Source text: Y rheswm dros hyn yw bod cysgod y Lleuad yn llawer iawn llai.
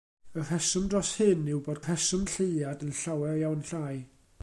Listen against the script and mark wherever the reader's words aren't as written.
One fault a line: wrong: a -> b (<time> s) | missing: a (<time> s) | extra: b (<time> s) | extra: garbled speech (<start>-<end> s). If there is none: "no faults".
wrong: cysgod -> rheswm (1.8 s)